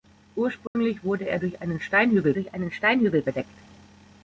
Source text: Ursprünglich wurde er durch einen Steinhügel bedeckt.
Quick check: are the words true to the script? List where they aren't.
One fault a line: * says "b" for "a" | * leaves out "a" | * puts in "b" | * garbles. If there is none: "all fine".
* puts in "durch einen Steinhügel"